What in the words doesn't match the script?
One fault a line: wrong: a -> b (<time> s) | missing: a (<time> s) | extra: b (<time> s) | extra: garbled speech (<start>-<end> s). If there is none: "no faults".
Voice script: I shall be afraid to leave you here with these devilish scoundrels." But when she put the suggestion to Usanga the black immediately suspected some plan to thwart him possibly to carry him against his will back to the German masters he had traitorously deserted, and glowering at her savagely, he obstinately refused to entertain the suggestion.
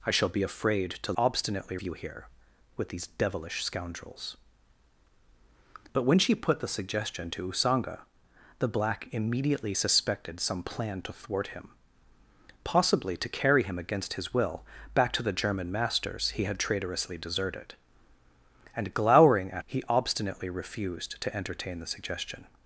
wrong: leave -> obstinately (1.2 s)
missing: her savagely (19.6 s)